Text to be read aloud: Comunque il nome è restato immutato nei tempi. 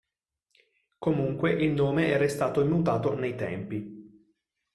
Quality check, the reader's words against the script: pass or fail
pass